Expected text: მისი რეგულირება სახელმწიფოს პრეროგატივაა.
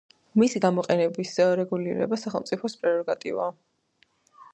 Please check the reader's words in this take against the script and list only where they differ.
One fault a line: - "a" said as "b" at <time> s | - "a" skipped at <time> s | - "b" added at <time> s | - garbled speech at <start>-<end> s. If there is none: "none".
- "გამოყენების" added at 0.6 s